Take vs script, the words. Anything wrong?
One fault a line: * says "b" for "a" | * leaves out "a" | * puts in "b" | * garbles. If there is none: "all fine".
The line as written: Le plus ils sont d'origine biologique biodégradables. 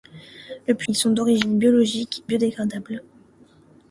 all fine